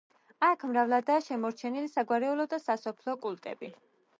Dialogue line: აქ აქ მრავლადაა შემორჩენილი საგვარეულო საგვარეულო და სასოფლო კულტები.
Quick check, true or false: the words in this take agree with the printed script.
false